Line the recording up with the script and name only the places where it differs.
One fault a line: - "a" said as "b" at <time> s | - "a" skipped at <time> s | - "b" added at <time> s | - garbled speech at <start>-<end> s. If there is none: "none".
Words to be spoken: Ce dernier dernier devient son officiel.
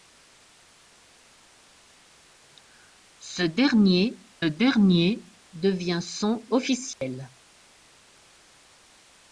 none